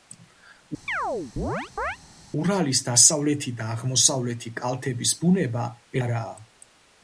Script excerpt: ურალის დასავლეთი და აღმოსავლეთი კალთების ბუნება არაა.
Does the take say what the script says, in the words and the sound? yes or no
no